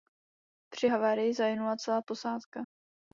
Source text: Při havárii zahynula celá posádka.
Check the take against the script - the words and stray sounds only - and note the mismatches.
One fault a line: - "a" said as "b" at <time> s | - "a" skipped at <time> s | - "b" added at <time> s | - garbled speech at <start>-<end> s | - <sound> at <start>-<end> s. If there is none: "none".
none